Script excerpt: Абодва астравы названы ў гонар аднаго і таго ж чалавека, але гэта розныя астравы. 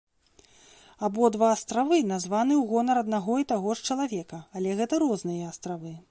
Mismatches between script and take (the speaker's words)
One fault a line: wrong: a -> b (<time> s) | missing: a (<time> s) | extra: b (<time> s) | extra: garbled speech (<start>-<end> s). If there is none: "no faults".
no faults